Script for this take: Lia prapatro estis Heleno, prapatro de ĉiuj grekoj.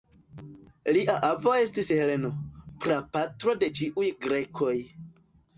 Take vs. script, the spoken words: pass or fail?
fail